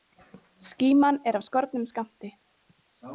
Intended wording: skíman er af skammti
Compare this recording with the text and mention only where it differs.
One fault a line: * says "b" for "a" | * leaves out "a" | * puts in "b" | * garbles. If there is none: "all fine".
* puts in "skornum"